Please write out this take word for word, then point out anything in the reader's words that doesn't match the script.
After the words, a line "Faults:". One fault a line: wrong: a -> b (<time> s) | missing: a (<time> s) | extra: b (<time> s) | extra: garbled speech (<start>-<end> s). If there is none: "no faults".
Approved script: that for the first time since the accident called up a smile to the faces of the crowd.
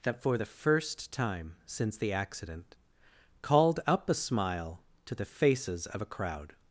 that for the first time since the accident called up a smile to the faces of a crowd.
Faults:
wrong: the -> a (6.0 s)